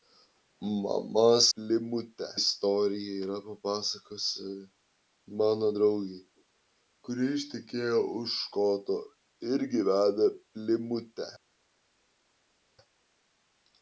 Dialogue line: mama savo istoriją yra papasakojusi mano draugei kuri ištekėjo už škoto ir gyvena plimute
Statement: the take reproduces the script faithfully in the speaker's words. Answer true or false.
false